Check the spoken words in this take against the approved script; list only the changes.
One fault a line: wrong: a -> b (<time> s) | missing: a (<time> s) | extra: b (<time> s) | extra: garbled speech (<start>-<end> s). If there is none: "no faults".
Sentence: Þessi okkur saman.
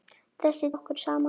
no faults